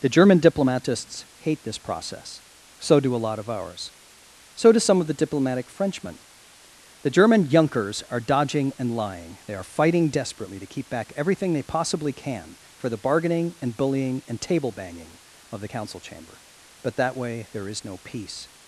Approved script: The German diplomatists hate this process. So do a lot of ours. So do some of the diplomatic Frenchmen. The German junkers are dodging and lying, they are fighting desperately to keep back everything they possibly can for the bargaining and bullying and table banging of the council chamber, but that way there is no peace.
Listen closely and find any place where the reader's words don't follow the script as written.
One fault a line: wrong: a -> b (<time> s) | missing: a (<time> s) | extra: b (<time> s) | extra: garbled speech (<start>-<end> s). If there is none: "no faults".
no faults